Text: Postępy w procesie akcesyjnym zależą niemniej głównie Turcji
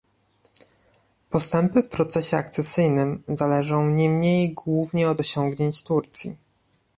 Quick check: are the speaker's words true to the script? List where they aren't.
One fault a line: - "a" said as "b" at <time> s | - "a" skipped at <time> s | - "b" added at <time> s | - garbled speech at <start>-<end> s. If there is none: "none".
- "od osiągnięć" added at 5.1 s